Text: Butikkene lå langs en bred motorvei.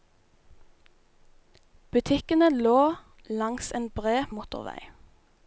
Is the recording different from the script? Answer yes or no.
no